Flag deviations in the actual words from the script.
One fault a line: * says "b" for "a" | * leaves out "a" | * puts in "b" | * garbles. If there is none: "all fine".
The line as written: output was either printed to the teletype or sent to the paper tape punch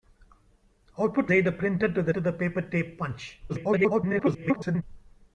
* leaves out "was"
* leaves out "teletype or sent"
* garbles